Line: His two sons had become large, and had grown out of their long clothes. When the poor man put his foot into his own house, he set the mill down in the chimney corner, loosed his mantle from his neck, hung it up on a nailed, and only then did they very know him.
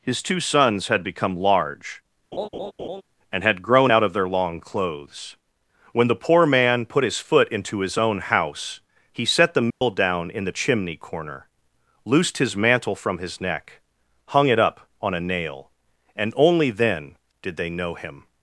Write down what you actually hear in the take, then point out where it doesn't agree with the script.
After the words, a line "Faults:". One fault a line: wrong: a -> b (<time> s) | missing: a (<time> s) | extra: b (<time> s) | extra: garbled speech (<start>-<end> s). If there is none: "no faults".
His two sons had become large, and had grown out of their long clothes. When the poor man put his foot into his own house, he set the mill down in the chimney corner, loosed his mantle from his neck, hung it up on a nail, and only then did they know him.
Faults:
wrong: nailed -> nail (15.2 s)
missing: very (17.7 s)